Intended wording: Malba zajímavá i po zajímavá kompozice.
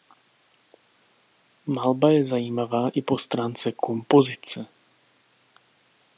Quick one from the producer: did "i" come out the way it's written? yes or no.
yes